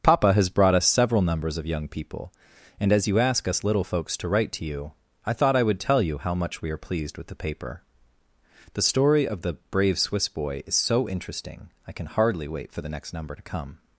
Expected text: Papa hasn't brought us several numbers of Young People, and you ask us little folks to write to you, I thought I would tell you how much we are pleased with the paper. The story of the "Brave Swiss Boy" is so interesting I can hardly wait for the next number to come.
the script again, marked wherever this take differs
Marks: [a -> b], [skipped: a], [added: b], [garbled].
Papa [hasn't -> has] brought us several numbers of Young People, and [added: as] you ask us little folks to write to you, I thought I would tell you how much we are pleased with the paper. The story of the "Brave Swiss Boy" is so interesting I can hardly wait for the next number to come.